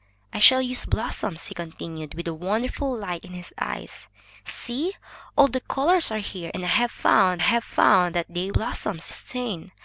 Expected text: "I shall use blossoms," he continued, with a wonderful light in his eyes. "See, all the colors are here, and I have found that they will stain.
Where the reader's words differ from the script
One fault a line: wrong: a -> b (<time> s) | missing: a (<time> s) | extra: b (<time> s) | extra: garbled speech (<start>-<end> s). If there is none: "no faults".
extra: have found (7.4 s)
wrong: will -> blossoms (8.5 s)